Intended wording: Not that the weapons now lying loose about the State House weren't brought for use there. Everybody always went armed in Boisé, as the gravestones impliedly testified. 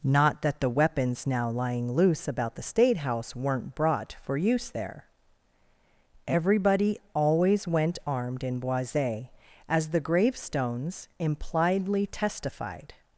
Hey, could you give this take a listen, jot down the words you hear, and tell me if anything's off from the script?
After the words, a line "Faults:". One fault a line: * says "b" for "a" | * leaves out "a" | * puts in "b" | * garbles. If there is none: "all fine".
Not that the weapons now lying loose about the State House weren't brought for use there. Everybody always went armed in Boisé, as the gravestones impliedly testified.
Faults:
all fine